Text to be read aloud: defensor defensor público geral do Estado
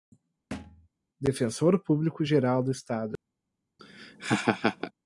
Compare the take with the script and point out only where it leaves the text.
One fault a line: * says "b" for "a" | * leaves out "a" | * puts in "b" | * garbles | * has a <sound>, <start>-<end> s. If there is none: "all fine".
* has a thud, 0.5-0.9 s
* leaves out "defensor"
* has a laugh, 3.8-4.9 s